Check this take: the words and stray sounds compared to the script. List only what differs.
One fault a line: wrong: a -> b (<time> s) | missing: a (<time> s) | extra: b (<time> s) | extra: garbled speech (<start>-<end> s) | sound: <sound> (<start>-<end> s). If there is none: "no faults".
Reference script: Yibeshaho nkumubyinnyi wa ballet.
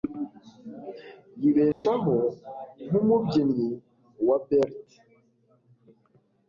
sound: dropout (1.7-1.8 s)